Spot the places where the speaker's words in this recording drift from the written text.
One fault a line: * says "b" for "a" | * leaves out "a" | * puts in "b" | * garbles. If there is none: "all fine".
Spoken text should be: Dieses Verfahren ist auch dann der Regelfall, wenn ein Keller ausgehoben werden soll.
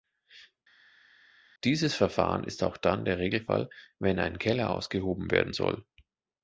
all fine